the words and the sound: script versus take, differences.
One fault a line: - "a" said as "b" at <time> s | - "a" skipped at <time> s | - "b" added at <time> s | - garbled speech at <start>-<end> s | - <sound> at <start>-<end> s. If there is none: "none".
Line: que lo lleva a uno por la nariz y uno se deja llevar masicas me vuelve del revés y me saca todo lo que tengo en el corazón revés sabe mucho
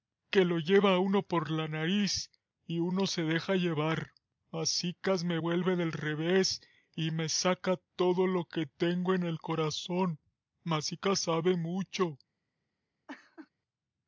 - "revés" said as "masicas" at 10.6 s
- laugh at 13.1-13.5 s